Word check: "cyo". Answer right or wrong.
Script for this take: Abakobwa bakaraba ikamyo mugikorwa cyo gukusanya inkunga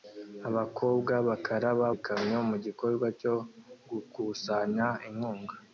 right